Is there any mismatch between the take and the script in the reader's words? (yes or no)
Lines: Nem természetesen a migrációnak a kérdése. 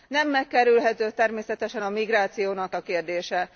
yes